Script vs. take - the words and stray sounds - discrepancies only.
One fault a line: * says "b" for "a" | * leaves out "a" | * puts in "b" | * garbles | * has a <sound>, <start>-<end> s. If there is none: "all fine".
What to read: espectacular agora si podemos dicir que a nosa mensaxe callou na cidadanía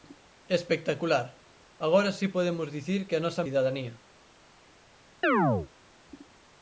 * leaves out "mensaxe callou na"
* has a chirp, 5.2-5.7 s